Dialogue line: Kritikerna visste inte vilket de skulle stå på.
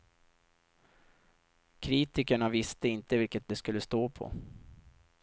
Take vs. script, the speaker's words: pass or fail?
pass